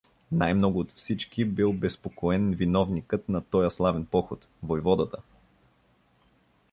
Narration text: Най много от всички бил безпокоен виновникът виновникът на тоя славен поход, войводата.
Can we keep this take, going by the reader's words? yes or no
no